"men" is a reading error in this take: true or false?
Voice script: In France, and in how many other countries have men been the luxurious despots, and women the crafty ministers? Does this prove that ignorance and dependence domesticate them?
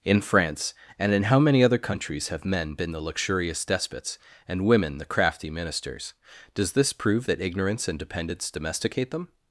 false